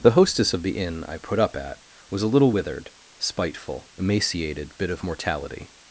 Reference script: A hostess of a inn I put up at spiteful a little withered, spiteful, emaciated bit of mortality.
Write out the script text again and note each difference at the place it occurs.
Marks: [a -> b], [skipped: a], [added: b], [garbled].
[A -> The] hostess of [a -> the] inn I put up at [spiteful -> was] a little withered, spiteful, emaciated bit of mortality.